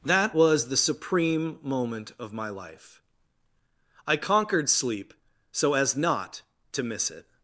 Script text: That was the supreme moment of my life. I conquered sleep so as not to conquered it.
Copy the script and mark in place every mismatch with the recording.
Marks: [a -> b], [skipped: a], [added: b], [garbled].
That was the supreme moment of my life. I conquered sleep so as not to [conquered -> miss] it.